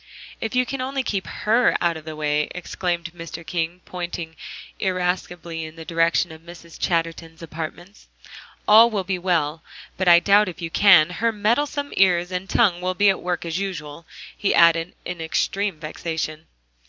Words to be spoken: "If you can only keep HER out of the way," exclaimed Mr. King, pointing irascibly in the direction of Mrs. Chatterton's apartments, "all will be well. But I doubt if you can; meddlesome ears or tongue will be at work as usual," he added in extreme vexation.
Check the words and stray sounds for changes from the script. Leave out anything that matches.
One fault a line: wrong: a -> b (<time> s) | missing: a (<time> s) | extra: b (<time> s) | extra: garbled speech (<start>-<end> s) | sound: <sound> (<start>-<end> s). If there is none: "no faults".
extra: her (11.1 s)
wrong: or -> and (12.3 s)